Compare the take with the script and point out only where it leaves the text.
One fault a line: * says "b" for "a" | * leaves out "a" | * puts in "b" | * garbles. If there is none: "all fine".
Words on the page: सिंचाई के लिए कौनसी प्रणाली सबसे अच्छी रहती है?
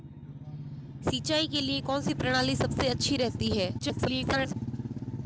* garbles